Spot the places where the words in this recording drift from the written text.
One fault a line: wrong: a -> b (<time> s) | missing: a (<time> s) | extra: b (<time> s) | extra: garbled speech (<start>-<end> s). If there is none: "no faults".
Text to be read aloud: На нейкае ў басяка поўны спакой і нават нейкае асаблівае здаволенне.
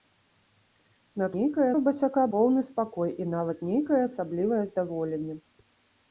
no faults